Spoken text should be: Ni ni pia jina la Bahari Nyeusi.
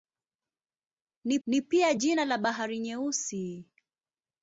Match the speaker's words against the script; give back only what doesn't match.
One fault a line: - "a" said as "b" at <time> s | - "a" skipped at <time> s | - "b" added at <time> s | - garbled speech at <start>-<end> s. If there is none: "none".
none